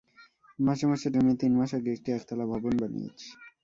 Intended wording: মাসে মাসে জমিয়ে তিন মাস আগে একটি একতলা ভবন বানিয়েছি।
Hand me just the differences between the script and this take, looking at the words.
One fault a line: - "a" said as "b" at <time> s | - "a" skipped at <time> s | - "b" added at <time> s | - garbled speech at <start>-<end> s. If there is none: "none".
none